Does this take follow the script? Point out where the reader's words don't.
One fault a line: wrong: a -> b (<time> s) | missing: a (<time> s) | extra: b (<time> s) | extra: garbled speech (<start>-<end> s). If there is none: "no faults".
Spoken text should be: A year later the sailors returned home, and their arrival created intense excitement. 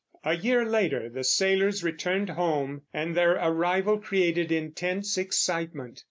no faults